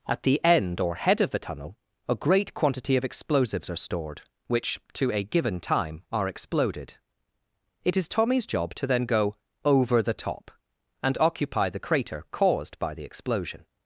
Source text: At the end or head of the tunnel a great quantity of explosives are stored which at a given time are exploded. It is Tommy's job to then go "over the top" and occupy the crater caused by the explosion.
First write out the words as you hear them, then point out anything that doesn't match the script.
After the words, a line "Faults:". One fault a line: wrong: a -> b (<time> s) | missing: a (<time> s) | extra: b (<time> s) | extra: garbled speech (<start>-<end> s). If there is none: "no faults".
At the end or head of the tunnel a great quantity of explosives are stored which to a given time are exploded. It is Tommy's job to then go "over the top" and occupy the crater caused by the explosion.
Faults:
wrong: at -> to (4.9 s)